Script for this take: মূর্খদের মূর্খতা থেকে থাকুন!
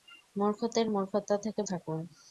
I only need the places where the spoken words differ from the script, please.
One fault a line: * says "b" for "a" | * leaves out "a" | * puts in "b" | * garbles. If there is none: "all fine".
all fine